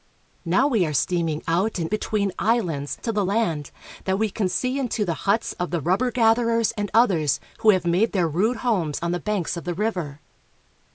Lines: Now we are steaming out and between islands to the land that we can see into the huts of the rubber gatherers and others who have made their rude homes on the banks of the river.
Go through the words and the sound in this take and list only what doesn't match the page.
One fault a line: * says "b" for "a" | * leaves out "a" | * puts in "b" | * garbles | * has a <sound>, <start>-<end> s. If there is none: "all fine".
all fine